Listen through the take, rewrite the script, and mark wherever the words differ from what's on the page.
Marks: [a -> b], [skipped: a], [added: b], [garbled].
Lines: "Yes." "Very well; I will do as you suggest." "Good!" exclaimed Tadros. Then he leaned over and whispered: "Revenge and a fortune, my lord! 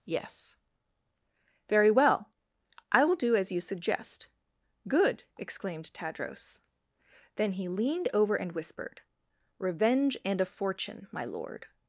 "Yes." "Very well; I will do as you suggest." "Good!" exclaimed Tadros. Then he leaned over and whispered: "Revenge and a fortune, my lord!